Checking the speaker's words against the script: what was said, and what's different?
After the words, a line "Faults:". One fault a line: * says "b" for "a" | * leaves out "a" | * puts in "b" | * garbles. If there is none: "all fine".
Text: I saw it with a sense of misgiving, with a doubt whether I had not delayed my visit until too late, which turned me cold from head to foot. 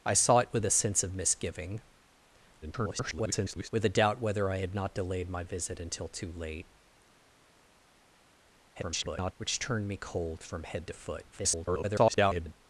I saw it with a sense of misgiving, [garbled] with a doubt whether I had not delayed my visit until too late, [garbled] which turned me cold from head to foot. [garbled]
Faults:
* garbles
* garbles
* garbles